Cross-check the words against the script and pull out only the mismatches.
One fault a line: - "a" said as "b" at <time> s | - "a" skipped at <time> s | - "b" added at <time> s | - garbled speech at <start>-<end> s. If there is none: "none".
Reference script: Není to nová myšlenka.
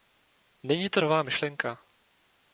none